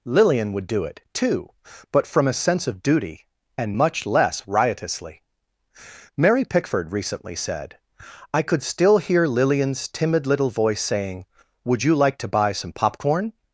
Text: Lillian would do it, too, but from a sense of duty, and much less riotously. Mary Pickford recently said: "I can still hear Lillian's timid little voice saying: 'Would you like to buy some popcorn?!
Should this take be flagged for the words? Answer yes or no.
yes